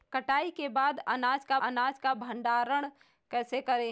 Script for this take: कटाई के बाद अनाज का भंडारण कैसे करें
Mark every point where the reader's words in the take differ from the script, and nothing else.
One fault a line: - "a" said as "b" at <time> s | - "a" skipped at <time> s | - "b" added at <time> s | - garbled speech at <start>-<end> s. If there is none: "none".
- "अनाज का" added at 1.6 s